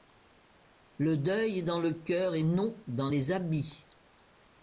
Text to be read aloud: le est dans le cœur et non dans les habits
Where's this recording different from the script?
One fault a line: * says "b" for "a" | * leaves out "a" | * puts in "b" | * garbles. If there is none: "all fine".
* puts in "deuil"